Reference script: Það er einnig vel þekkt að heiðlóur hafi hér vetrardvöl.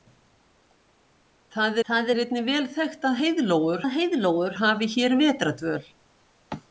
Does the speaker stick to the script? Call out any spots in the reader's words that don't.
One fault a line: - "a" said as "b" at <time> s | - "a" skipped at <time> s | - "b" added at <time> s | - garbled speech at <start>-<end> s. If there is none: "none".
- "það" added at 1.9 s
- "að heiðlóur" added at 3.8 s